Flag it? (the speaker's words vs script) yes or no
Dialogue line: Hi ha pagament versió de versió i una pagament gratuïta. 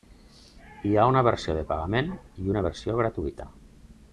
yes